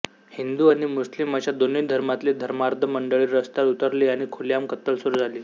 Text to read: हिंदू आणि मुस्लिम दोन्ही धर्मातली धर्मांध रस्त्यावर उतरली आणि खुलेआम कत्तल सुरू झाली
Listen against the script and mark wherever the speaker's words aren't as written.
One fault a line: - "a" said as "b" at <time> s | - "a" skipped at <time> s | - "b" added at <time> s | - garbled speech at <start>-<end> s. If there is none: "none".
- "अशा" added at 1.4 s
- "मंडळी" added at 2.9 s